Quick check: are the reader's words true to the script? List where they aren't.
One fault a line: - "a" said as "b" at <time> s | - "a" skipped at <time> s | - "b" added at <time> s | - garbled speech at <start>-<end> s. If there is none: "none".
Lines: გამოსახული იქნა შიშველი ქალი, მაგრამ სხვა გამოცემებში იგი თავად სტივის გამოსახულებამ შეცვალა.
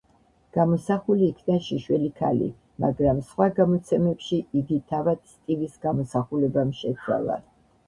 none